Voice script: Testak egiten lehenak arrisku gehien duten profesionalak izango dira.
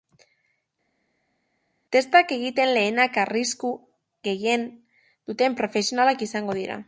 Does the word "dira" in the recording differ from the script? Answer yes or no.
no